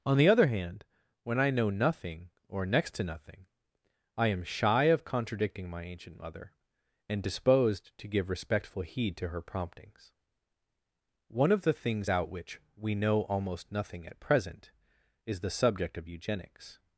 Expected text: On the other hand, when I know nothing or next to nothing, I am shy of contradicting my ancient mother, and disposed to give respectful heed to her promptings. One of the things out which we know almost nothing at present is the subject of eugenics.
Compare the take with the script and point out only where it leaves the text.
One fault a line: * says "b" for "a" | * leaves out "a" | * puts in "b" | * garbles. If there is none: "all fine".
all fine